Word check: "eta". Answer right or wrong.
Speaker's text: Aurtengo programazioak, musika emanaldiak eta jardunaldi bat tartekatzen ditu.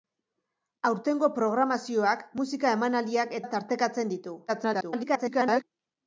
wrong